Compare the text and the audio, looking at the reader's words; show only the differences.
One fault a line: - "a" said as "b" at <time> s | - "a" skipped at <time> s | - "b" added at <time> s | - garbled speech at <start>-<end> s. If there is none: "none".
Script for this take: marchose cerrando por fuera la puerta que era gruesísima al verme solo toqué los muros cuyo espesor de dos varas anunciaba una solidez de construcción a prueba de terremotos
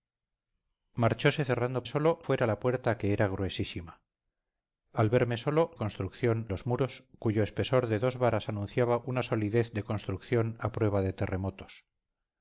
- "por" said as "solo" at 1.8 s
- "toqué" said as "construcción" at 5.7 s